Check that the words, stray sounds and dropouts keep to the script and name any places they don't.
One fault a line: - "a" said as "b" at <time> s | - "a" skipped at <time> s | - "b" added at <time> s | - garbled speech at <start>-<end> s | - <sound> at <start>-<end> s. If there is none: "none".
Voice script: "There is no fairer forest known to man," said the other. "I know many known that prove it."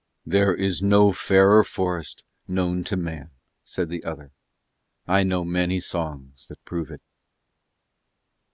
- "known" said as "songs" at 5.8 s